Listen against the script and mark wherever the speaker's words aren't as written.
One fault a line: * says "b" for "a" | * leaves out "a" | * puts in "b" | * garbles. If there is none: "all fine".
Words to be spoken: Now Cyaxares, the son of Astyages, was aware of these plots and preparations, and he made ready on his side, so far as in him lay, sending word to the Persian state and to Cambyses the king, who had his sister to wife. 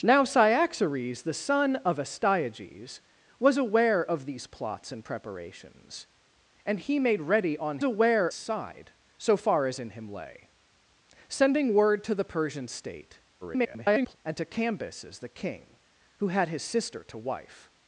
* says "aware" for "his"
* garbles